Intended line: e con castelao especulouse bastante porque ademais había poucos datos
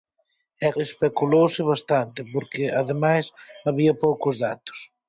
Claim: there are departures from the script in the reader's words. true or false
true